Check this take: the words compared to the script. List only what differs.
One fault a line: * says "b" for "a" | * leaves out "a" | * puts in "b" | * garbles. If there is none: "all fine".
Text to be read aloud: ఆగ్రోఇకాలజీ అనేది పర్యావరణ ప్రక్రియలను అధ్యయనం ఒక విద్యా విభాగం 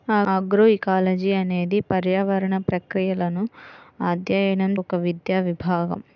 all fine